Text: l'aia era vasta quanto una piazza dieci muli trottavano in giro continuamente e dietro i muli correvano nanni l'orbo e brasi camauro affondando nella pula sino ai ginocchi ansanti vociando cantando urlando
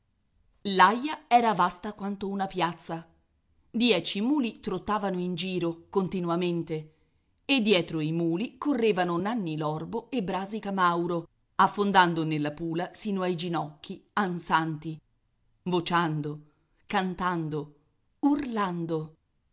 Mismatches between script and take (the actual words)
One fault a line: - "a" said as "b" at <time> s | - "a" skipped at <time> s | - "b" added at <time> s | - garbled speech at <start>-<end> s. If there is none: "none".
none